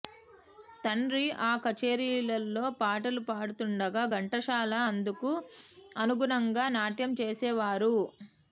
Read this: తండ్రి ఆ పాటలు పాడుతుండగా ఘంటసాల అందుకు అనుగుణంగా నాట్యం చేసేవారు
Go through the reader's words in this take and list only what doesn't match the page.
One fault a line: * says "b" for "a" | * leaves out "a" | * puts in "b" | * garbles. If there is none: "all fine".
* puts in "కచేరీలలో"